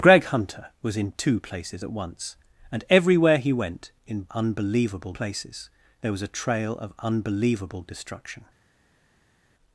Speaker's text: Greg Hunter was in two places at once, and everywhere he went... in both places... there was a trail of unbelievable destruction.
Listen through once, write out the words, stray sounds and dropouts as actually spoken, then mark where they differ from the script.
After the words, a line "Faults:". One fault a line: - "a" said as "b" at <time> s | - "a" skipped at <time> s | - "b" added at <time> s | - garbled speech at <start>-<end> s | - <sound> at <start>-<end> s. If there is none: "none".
Greg Hunter was in two places at once, and everywhere he went... in unbelievable places... there was a trail of unbelievable destruction.
Faults:
- "both" said as "unbelievable" at 4.3 s